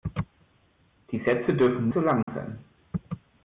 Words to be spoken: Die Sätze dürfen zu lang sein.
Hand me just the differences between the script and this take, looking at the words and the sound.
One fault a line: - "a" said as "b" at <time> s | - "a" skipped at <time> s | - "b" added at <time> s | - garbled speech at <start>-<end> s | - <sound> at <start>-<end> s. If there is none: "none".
- dropout at 2.2-2.3 s